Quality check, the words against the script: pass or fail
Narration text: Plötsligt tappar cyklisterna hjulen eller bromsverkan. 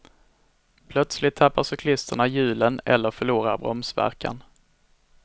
fail